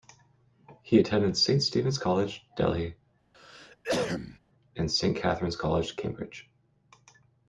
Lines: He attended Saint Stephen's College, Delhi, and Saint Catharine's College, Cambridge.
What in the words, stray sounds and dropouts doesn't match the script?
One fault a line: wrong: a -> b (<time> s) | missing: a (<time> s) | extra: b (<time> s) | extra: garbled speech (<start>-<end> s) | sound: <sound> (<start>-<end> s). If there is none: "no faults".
sound: cough (3.3-4.4 s)